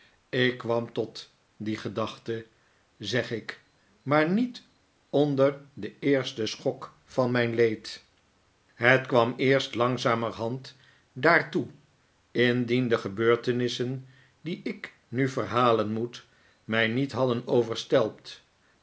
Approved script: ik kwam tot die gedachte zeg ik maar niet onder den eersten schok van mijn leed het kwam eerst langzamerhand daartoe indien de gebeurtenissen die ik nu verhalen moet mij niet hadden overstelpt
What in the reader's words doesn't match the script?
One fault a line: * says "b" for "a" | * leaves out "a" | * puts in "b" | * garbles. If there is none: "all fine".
all fine